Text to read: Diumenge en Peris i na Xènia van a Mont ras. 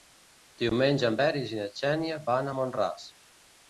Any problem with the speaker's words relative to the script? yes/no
no